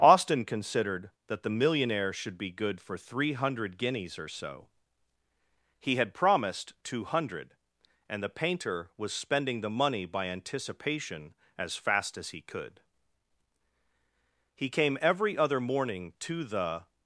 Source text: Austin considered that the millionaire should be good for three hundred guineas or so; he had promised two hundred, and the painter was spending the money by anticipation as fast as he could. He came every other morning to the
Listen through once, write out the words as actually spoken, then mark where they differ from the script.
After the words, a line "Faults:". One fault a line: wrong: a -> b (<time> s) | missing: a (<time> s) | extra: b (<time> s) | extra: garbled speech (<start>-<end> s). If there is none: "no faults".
Austin considered that the millionaire should be good for three hundred guineas or so; he had promised two hundred, and the painter was spending the money by anticipation as fast as he could. He came every other morning to the
Faults:
no faults